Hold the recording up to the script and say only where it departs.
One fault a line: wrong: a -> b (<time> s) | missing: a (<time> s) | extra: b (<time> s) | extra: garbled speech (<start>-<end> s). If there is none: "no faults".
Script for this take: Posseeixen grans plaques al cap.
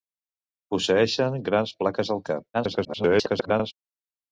extra: garbled speech (2.5-3.7 s)